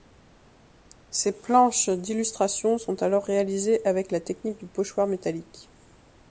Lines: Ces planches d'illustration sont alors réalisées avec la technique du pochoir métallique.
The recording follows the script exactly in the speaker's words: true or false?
true